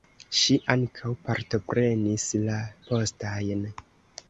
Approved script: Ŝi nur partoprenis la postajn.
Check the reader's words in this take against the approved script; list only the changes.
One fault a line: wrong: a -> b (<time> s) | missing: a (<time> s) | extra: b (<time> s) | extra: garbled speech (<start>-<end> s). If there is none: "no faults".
wrong: nur -> ankaŭ (0.8 s)